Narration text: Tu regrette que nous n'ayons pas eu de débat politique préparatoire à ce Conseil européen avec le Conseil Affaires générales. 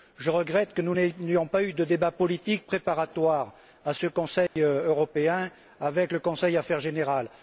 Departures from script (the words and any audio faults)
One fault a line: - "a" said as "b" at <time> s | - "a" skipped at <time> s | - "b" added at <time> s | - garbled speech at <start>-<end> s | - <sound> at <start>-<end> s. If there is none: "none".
- "Tu" said as "Je" at 0.2 s
- dropout at 4.5-4.6 s